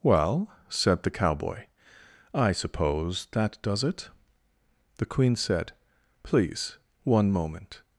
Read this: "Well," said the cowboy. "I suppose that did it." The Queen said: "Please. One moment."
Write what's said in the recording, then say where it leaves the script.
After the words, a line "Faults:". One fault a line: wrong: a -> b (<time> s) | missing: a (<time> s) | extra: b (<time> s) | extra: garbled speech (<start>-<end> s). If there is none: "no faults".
"Well," said the cowboy. "I suppose that does it." The Queen said: "Please. One moment."
Faults:
wrong: did -> does (3.6 s)